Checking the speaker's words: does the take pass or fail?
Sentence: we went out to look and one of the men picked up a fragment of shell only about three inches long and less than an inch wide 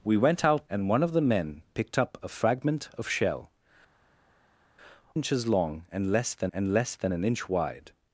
fail